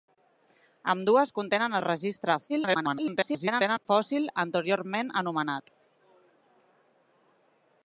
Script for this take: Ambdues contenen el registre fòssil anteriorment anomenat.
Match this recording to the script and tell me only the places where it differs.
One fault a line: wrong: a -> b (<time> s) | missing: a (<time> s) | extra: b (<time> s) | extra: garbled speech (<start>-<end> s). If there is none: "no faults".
extra: garbled speech (2.5-3.9 s)